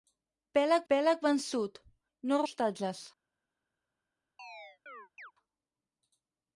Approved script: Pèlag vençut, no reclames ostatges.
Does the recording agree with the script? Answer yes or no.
no